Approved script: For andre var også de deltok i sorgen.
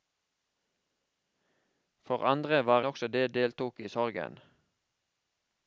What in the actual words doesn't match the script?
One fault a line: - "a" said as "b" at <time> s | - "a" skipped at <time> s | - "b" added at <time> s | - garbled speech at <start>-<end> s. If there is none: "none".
none